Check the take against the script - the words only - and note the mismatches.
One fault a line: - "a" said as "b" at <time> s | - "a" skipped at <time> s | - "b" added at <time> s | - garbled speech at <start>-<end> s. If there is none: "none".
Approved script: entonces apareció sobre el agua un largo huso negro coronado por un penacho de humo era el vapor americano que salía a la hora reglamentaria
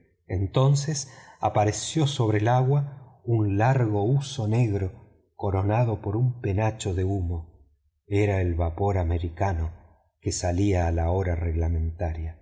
none